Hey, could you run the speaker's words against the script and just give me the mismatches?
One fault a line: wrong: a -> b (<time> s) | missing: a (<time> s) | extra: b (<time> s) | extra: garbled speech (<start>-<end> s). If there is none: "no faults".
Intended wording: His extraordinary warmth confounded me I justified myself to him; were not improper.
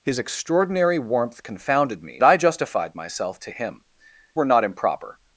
no faults